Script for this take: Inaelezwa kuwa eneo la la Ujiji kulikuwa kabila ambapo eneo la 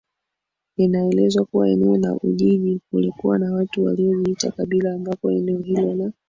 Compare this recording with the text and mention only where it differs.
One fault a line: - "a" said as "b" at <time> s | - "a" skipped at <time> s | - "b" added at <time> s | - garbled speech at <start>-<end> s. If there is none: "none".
- "la" skipped at 2.1 s
- "na watu waliojiita" added at 3.4 s
- "hilo" added at 5.6 s